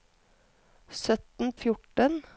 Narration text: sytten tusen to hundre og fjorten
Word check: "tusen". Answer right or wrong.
wrong